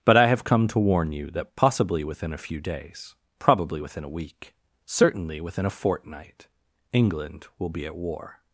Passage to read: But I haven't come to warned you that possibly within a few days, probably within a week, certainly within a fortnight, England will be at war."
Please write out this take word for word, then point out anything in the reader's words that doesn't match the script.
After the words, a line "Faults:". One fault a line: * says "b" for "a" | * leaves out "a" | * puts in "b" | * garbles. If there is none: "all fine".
But I have come to warn you that possibly within a few days, probably within a week, certainly within a fortnight, England will be at war."
Faults:
* says "have" for "haven't"
* says "warn" for "warned"